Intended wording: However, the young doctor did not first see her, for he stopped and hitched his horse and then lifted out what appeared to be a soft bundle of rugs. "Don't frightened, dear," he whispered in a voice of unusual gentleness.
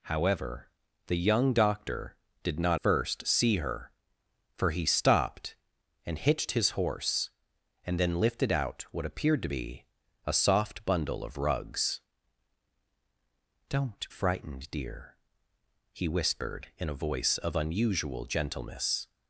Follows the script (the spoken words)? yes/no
yes